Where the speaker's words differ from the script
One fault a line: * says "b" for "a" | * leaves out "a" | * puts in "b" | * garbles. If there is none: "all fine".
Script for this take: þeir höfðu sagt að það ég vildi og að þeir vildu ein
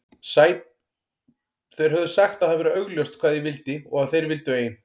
* puts in "væri augljóst hvað"